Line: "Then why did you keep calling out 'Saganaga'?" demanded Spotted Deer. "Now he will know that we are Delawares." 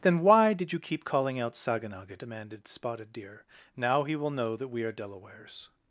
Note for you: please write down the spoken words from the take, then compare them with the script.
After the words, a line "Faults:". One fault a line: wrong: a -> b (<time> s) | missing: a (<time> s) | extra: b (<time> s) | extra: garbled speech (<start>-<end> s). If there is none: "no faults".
"Then why did you keep calling out 'Saganaga'?" demanded Spotted Deer. "Now he will know that we are Delawares."
Faults:
no faults